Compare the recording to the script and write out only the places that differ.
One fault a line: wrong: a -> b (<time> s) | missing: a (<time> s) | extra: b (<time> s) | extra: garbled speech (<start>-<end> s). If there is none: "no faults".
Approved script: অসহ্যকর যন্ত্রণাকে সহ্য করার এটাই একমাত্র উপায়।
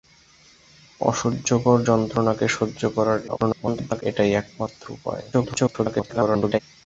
extra: garbled speech (3.3-4.0 s)
extra: garbled speech (5.3-6.6 s)